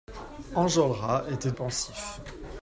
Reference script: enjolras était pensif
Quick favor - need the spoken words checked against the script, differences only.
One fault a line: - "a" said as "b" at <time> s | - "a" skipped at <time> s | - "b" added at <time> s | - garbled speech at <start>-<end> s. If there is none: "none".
none